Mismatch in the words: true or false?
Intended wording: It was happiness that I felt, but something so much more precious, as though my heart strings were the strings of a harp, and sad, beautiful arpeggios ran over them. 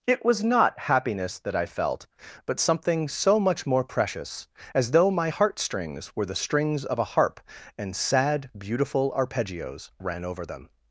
true